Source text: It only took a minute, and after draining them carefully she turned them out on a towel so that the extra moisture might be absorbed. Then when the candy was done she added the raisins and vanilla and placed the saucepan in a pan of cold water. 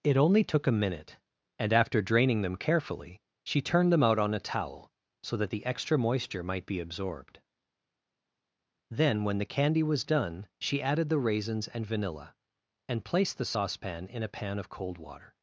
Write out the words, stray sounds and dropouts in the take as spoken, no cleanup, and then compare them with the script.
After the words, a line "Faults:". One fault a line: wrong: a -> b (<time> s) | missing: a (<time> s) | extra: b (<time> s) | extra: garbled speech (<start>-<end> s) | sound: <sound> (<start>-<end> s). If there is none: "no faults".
It only took a minute, and after draining them carefully she turned them out on a towel so that the extra moisture might be absorbed. Then when the candy was done she added the raisins and vanilla and placed the saucepan in a pan of cold water.
Faults:
no faults